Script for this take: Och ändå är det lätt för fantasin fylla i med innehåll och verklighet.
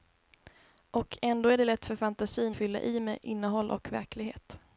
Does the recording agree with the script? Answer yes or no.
yes